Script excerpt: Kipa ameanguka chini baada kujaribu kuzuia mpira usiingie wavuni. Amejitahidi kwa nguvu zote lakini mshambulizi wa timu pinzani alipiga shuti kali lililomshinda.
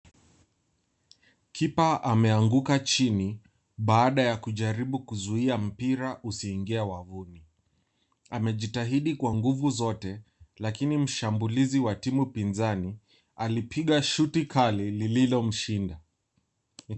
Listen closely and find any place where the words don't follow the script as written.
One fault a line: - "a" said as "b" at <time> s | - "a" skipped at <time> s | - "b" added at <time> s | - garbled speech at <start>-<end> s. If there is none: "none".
- "ya" added at 4.2 s